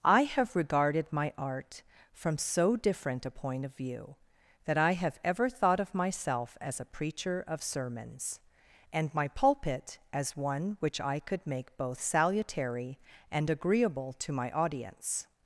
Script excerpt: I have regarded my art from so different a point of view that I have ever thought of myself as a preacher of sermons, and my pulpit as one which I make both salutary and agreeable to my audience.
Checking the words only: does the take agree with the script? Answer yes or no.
no